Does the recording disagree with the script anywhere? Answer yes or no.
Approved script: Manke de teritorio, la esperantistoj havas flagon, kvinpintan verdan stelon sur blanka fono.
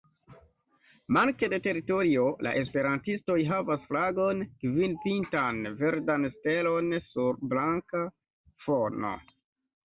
no